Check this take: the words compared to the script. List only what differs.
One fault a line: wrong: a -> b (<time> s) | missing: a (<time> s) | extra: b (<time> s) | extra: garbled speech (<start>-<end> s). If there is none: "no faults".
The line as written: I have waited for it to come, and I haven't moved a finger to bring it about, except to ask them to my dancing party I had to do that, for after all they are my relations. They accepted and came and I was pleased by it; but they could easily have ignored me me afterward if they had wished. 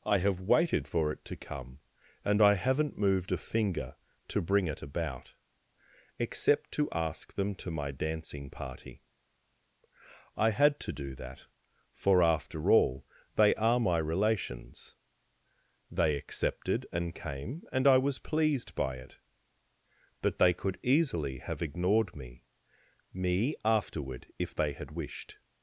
no faults